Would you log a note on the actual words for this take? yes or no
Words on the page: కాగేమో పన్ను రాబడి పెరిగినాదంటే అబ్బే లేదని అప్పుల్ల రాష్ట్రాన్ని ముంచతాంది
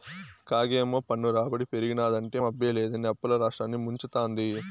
no